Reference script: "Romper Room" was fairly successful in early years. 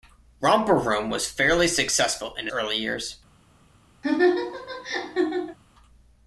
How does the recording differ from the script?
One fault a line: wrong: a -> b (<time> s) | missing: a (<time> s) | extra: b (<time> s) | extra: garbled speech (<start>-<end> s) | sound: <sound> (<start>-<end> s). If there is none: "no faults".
sound: laugh (4.0-5.6 s)